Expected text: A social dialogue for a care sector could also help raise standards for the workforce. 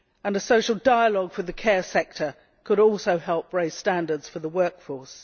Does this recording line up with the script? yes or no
no